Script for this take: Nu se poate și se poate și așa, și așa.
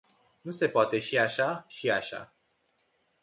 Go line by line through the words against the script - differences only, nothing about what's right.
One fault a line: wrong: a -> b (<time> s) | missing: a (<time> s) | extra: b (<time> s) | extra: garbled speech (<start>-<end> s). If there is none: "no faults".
missing: se poate și (1.2 s)